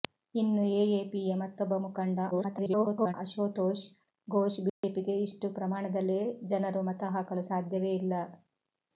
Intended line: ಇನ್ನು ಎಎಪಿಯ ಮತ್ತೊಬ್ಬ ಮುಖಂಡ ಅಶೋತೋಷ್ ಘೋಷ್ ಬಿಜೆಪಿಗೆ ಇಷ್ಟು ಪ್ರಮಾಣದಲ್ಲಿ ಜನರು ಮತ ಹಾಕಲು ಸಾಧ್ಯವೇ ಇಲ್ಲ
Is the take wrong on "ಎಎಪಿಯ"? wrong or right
right